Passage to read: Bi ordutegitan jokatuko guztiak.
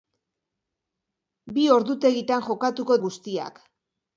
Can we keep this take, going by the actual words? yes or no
yes